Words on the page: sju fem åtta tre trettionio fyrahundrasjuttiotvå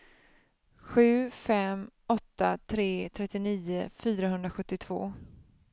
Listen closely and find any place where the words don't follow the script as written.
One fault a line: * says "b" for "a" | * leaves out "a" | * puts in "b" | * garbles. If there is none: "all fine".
all fine